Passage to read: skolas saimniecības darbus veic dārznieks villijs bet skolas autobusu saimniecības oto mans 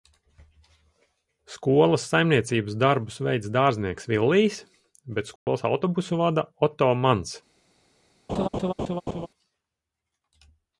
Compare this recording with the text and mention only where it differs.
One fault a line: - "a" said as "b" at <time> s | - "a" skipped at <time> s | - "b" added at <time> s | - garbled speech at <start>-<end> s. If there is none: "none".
- "saimniecības" said as "vada" at 6.2 s